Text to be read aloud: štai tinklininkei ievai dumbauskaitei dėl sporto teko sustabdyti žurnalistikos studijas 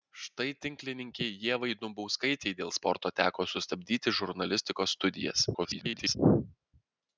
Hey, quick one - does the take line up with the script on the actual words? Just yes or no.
no